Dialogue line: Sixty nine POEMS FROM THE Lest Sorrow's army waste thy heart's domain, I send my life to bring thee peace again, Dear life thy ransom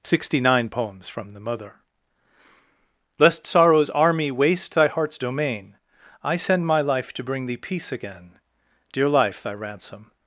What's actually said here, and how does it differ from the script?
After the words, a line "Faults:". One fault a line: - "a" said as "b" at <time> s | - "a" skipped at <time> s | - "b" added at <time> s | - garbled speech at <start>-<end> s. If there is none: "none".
Sixty nine POEMS FROM THE mother Lest Sorrow's army waste thy heart's domain, I send my life to bring thee peace again, Dear life thy ransom
Faults:
- "mother" added at 1.4 s